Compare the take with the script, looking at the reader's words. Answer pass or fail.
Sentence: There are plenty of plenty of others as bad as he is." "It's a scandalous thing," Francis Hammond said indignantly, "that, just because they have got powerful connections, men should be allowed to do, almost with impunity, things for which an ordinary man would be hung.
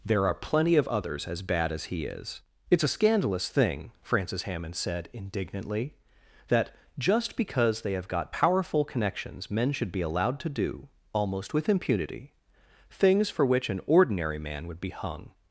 fail